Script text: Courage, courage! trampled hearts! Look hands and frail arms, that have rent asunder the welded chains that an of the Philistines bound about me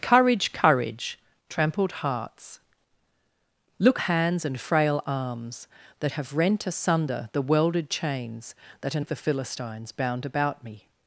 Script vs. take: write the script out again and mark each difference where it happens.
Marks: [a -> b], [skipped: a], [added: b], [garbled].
Courage, courage! trampled hearts! Look hands and frail arms, that have rent asunder the welded chains that an of the Philistines bound about me